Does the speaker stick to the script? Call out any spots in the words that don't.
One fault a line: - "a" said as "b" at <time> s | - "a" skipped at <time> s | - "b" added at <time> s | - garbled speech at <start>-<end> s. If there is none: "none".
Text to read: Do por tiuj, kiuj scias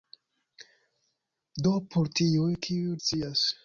none